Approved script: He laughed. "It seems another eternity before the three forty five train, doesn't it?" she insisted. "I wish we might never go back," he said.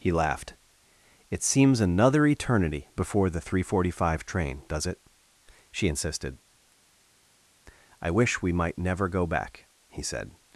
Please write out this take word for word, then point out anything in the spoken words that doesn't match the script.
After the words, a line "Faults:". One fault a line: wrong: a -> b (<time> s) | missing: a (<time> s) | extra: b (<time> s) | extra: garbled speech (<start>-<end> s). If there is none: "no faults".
He laughed. "It seems another eternity before the three forty five train, does it?" she insisted. "I wish we might never go back," he said.
Faults:
wrong: doesn't -> does (4.7 s)